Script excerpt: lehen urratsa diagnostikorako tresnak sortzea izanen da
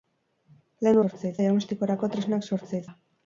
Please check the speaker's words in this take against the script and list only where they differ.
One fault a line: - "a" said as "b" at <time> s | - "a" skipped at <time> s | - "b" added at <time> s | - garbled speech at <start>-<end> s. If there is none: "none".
- "urratsa" said as "sortzea" at 1.0 s
- "izanen" skipped at 2.8 s